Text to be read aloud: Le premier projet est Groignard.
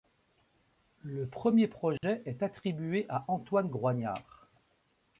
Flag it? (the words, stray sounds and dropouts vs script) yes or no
yes